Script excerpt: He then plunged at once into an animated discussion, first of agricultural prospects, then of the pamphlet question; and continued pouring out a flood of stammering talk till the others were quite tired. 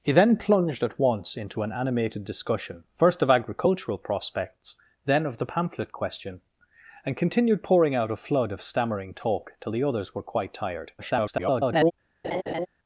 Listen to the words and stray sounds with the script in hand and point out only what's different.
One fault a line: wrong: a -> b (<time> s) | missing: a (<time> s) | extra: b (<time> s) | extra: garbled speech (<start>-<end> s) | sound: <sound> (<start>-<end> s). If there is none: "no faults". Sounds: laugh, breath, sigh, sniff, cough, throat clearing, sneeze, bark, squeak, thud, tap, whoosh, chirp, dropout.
extra: garbled speech (11.0-11.9 s)
sound: laugh (12.2-12.7 s)